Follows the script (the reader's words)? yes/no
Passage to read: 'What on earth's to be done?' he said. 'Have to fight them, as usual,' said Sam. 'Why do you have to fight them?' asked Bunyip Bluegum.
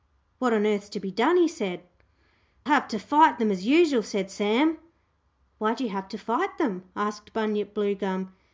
yes